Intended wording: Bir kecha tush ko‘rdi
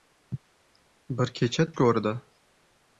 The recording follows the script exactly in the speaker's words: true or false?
false